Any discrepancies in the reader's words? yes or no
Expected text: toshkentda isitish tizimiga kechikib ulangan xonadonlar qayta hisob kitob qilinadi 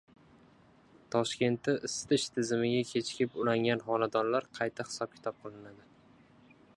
no